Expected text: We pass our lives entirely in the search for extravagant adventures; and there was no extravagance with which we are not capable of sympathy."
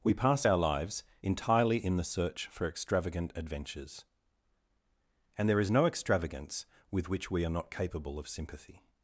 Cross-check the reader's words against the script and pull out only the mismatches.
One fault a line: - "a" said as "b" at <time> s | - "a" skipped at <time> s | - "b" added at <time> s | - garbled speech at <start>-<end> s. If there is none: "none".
- "was" said as "is" at 5.6 s